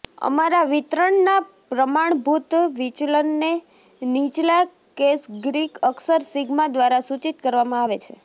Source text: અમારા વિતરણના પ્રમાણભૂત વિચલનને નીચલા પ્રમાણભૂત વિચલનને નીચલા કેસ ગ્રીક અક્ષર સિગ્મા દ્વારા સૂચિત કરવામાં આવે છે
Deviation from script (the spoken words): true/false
true